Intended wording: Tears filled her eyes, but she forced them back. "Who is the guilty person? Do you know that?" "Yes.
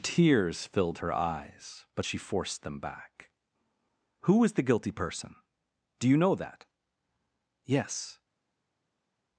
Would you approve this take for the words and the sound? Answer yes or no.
yes